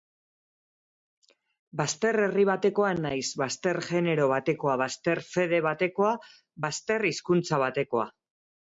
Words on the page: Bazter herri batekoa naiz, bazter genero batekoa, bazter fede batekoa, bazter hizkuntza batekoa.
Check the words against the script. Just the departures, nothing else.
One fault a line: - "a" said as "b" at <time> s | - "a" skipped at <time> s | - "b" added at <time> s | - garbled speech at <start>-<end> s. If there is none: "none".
none